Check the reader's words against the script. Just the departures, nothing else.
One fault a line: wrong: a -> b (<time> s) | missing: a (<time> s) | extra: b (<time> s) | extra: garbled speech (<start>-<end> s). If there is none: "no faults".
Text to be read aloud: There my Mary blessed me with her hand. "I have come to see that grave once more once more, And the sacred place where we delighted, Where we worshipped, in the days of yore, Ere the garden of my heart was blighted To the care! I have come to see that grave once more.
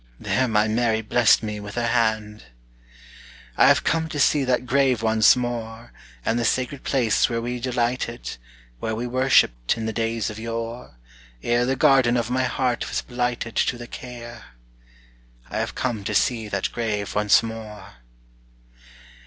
missing: once more (5.9 s)